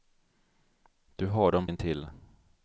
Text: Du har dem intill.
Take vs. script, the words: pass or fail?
pass